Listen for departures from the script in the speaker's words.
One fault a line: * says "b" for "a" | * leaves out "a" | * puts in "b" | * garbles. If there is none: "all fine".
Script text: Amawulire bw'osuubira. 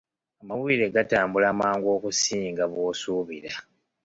* puts in "gatambula mangu okusinga"